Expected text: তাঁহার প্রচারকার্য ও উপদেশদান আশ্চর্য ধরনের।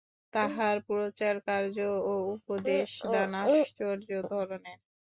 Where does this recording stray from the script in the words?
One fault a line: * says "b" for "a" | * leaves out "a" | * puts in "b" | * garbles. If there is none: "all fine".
all fine